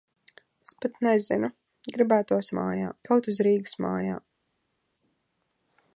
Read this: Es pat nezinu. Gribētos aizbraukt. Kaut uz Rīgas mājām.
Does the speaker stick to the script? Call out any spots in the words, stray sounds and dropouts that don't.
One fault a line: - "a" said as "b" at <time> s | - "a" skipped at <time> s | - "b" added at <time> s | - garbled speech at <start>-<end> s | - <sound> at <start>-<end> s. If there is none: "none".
- "aizbraukt" said as "mājām" at 2.6 s